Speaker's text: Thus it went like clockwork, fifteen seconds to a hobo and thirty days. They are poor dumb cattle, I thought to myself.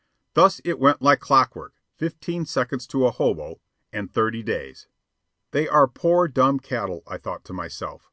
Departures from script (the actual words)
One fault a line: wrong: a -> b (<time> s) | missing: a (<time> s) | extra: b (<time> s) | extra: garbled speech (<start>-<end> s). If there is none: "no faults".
no faults